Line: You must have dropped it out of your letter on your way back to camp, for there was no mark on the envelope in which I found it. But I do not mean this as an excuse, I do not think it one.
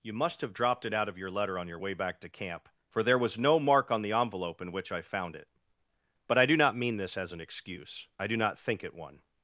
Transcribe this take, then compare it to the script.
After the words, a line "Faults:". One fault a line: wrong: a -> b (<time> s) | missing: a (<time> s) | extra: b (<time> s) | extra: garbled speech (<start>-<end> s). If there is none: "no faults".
You must have dropped it out of your letter on your way back to camp, for there was no mark on the envelope in which I found it. But I do not mean this as an excuse, I do not think it one.
Faults:
no faults